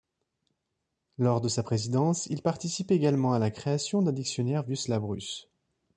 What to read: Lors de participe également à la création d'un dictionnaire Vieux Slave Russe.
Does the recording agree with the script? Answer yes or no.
no